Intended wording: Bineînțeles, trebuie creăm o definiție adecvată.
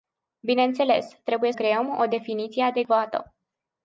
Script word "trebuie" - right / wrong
right